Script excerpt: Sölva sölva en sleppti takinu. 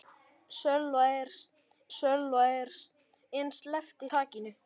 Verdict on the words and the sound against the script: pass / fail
pass